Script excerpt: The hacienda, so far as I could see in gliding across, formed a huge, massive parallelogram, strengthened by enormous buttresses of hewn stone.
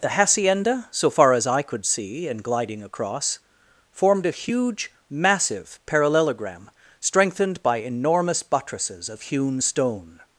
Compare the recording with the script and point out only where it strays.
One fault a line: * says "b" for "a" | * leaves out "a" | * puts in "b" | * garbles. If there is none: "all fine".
all fine